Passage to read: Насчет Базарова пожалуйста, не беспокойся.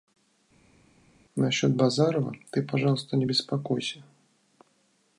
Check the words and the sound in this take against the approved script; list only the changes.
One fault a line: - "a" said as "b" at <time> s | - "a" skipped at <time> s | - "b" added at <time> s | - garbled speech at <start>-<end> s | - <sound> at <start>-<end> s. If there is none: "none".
- "ты" added at 2.5 s